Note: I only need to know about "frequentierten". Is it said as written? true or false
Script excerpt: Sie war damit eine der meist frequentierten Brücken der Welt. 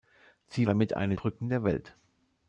false